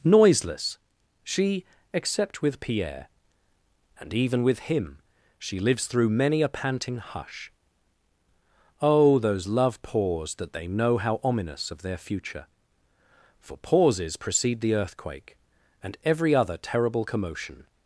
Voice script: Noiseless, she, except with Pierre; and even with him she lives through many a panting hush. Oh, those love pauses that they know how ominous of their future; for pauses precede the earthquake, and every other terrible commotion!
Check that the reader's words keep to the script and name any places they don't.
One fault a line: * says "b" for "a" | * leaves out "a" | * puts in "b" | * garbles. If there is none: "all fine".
* says "pause" for "pauses"